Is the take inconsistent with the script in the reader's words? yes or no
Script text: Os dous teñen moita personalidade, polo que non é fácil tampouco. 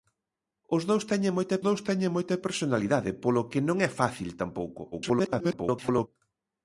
yes